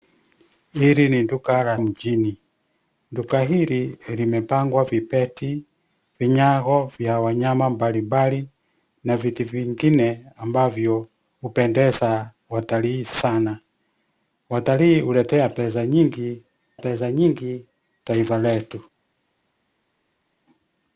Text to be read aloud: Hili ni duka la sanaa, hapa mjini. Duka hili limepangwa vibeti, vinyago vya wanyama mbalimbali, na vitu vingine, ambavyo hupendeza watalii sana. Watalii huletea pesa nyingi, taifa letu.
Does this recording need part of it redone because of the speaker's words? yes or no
yes